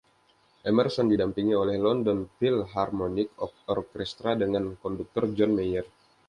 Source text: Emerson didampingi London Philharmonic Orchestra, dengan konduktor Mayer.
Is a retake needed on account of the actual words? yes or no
yes